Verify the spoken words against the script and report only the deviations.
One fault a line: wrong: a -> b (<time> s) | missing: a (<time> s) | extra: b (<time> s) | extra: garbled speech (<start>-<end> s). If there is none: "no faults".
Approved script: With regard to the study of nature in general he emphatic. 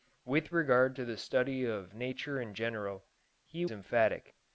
no faults